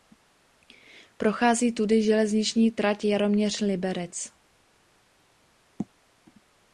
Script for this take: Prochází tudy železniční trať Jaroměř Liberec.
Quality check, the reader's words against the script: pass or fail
pass